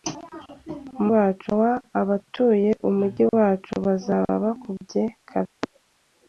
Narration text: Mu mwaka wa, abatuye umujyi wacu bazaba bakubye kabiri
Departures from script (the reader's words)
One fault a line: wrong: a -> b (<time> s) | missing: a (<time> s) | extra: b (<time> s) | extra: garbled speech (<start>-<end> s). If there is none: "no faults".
wrong: mwaka -> wacu (1.1 s)